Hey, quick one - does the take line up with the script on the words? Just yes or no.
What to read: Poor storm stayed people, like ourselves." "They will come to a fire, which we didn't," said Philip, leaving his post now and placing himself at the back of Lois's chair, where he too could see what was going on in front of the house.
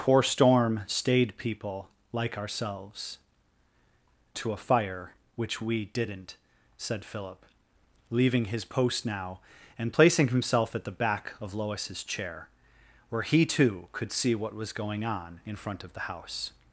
no